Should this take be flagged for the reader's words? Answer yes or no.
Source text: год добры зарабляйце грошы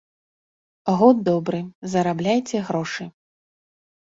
no